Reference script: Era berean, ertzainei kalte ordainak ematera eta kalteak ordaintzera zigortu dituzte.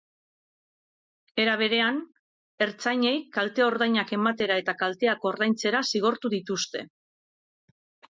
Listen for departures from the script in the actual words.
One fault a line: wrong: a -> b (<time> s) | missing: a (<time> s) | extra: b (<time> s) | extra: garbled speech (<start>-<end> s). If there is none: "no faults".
no faults